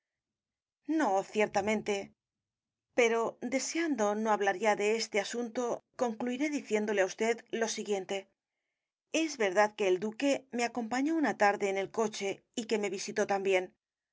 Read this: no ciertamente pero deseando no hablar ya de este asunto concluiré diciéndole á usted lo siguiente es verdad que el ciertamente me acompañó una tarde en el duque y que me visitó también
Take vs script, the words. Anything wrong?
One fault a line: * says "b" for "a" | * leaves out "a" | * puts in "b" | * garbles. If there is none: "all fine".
* says "duque" for "ciertamente"
* says "coche" for "duque"